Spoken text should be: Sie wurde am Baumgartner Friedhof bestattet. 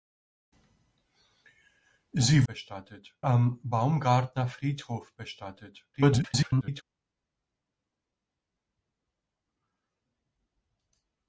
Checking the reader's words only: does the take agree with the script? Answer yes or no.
no